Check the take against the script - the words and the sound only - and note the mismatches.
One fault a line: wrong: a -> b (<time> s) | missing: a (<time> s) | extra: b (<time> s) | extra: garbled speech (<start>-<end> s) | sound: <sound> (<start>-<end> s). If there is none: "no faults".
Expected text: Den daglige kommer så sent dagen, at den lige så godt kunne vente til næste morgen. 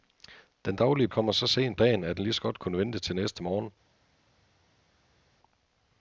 no faults